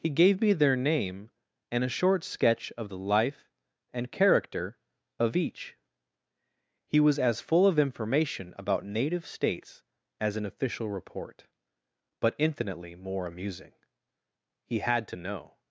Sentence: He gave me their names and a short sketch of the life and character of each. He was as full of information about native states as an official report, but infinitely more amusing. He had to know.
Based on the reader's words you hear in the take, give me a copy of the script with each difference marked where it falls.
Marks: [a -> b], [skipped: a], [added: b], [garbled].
He gave me their [names -> name] and a short sketch of the life and character of each. He was as full of information about native states as an official report, but infinitely more amusing. He had to know.